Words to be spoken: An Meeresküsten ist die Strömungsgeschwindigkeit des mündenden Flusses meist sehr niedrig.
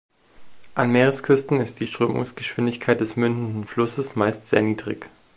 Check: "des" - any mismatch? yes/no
no